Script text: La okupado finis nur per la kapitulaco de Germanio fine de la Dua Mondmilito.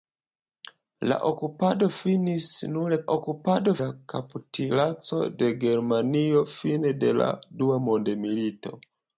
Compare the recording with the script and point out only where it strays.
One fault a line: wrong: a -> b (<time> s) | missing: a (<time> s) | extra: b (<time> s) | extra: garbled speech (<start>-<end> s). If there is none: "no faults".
wrong: per -> okupado (3.2 s)